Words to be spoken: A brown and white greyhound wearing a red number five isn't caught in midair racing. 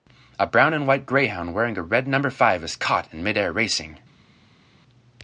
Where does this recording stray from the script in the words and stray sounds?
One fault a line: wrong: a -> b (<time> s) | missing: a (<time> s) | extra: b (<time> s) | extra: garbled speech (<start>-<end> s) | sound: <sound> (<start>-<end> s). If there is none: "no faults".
wrong: isn't -> is (2.6 s)